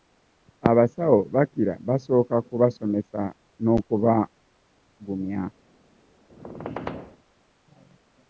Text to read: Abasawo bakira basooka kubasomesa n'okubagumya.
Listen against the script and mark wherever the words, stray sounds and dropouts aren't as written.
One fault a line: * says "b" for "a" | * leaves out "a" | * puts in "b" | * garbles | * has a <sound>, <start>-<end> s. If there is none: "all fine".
* has a squeak, 6.3-7.2 s